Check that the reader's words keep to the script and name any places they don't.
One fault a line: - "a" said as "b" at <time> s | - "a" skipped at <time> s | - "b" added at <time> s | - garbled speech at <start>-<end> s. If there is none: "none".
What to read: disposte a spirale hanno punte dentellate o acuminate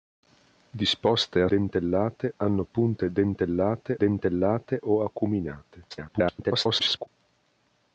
- "spirale" said as "dentellate" at 1.5 s
- "dentellate" added at 4.0 s
- garbled speech at 5.9-7.1 s